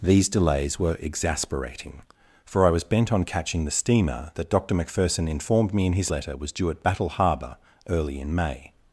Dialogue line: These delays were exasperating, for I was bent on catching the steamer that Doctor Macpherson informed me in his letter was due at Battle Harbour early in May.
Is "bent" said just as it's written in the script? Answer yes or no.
yes